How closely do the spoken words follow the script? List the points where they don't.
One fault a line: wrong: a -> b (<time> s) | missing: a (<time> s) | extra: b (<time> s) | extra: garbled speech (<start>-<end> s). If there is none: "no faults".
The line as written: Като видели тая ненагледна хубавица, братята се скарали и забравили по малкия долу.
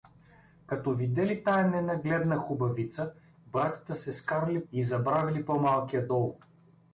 no faults